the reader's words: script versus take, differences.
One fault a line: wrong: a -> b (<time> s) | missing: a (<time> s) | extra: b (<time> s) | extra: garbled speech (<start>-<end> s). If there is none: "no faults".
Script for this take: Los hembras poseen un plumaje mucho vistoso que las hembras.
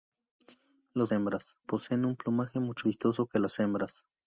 no faults